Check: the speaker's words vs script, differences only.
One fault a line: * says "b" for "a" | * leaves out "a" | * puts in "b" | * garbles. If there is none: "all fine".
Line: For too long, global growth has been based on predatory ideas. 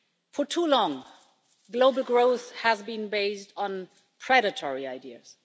all fine